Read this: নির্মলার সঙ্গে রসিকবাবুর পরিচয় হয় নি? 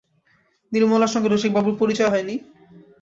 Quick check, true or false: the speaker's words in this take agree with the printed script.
true